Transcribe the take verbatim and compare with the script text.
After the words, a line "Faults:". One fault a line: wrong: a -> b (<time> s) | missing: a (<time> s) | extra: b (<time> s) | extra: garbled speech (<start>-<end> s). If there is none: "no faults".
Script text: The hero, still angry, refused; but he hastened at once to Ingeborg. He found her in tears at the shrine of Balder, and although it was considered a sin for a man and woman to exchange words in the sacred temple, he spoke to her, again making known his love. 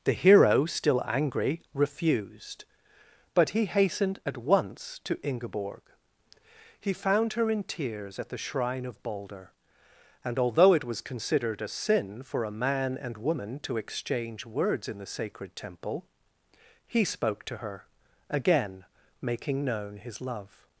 The hero, still angry, refused; but he hastened at once to Ingeborg. He found her in tears at the shrine of Balder, and although it was considered a sin for a man and woman to exchange words in the sacred temple, he spoke to her, again making known his love.
Faults:
no faults